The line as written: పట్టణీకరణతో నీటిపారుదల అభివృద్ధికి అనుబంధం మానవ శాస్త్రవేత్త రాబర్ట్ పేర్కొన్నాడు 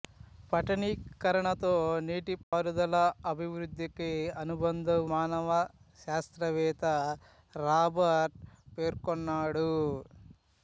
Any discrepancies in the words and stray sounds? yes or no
yes